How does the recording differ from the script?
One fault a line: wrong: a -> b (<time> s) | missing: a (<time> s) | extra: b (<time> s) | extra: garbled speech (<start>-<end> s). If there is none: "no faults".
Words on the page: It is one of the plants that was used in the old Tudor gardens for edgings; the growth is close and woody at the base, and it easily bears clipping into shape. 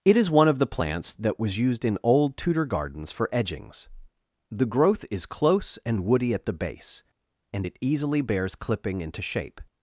missing: the (2.0 s)